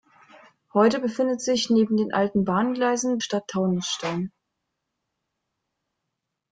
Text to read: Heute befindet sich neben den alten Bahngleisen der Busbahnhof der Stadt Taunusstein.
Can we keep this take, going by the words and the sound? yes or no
no